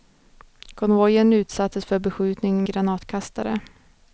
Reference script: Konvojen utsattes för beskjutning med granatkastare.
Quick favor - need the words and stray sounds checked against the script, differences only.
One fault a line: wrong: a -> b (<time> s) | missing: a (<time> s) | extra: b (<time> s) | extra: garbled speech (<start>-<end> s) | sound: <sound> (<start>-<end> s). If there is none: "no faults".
missing: med (2.6 s)